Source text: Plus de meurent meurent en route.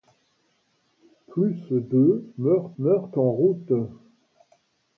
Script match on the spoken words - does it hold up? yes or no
yes